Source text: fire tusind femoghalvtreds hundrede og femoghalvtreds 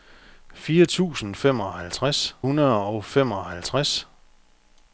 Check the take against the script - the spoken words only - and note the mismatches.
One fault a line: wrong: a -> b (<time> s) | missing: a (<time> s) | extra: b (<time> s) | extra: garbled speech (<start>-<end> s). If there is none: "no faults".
no faults